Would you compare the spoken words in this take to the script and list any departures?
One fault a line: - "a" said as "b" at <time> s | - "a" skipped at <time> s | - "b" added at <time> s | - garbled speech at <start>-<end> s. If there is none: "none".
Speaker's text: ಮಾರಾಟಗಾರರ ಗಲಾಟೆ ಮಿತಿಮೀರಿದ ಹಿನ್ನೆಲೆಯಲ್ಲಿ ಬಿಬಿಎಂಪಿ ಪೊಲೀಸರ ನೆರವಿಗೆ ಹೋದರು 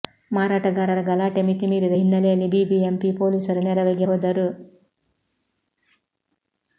none